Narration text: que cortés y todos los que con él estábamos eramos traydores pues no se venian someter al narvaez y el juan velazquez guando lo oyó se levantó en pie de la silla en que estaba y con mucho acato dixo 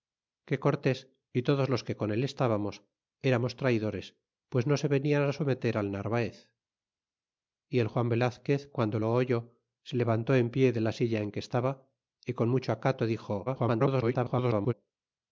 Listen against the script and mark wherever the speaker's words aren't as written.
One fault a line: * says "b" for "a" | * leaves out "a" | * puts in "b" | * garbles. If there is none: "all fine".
* garbles